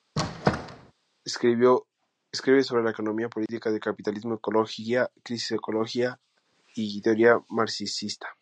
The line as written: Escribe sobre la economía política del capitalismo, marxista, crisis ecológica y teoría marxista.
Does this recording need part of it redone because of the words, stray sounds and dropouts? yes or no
yes